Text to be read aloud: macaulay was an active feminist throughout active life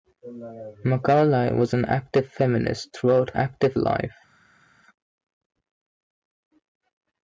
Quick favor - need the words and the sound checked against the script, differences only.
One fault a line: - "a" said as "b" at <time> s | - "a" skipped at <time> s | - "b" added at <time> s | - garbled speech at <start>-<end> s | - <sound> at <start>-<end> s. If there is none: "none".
none